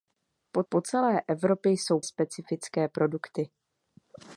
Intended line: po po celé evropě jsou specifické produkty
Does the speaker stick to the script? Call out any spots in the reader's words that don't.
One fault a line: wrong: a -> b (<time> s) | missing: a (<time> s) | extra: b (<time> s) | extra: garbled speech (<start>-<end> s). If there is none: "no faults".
no faults